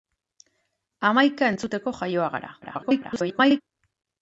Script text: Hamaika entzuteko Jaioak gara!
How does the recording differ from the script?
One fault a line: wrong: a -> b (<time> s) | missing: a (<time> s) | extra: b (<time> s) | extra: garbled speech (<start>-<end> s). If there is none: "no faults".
extra: garbled speech (2.6-3.6 s)